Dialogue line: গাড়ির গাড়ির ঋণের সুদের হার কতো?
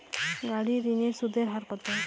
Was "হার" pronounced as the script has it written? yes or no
yes